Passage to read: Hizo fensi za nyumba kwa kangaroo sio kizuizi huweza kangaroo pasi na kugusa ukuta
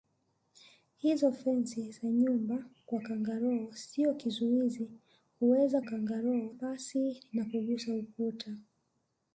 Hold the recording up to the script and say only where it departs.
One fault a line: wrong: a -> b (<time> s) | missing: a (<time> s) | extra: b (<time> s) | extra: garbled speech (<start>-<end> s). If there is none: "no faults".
no faults